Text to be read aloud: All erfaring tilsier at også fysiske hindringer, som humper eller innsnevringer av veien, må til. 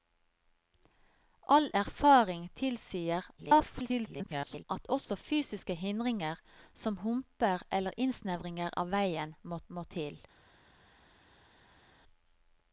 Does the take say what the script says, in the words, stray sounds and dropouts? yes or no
no